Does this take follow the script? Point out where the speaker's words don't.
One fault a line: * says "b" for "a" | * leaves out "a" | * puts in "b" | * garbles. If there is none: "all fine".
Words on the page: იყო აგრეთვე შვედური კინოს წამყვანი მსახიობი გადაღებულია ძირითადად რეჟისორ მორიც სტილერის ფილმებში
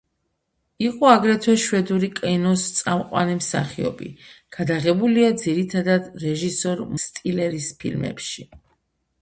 * leaves out "მორიც"